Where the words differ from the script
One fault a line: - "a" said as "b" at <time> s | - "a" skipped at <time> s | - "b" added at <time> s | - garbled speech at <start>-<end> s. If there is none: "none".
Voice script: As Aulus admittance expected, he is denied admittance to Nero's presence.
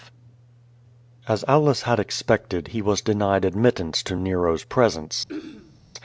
- "admittance" said as "had" at 1.8 s
- "is" said as "was" at 2.8 s